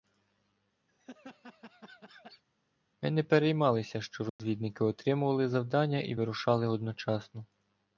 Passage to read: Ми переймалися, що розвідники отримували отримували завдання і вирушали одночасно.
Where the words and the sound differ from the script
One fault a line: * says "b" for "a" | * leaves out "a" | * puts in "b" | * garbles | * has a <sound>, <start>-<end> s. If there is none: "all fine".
* has a laugh, 0.9-2.4 s
* puts in "не"
* has a dropout, 4.3-4.4 s
* leaves out "отримували"